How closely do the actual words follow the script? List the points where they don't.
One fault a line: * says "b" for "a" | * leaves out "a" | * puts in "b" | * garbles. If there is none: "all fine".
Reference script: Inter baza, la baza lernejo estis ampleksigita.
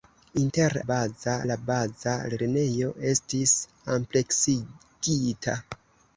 all fine